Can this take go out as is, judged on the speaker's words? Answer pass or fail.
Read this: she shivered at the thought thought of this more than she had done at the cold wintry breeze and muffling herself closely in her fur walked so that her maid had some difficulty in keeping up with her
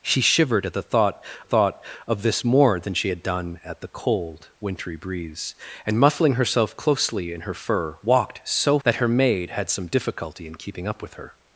pass